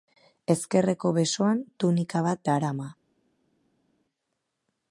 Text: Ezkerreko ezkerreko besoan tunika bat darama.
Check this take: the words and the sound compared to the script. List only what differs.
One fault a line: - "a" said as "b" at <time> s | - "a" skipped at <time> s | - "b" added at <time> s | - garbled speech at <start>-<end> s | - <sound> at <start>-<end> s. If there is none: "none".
- "ezkerreko" skipped at 1.1 s